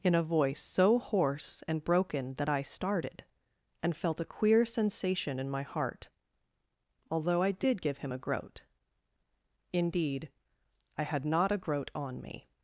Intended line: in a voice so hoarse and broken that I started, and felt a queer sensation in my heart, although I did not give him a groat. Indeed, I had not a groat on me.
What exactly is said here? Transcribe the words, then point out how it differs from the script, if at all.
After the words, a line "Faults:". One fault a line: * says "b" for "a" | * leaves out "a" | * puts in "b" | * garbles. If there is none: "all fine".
in a voice so hoarse and broken that I started, and felt a queer sensation in my heart, although I did give him a groat. Indeed, I had not a groat on me.
Faults:
* leaves out "not"